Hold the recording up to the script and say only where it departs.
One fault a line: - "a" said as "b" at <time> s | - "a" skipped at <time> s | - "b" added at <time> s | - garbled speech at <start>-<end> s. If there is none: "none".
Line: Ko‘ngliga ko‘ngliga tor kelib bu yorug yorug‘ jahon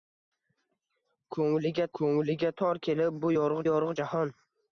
none